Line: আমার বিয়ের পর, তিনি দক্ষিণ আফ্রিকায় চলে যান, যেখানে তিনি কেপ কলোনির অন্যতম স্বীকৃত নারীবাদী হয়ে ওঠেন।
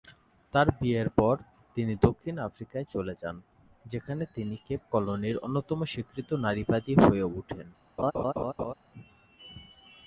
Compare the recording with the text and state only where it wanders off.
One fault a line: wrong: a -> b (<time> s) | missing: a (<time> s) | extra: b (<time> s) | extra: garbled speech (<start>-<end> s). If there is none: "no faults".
wrong: আমার -> তার (0.5 s)